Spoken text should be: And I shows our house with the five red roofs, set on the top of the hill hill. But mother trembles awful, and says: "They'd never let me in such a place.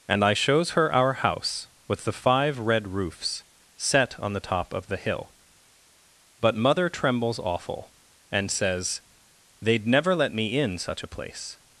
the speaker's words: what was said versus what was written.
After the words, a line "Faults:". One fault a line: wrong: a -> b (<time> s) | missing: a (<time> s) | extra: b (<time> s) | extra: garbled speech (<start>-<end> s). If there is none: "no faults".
And I shows her our house with the five red roofs, set on the top of the hill. But mother trembles awful, and says: "They'd never let me in such a place.
Faults:
extra: her (0.7 s)
missing: hill (5.3 s)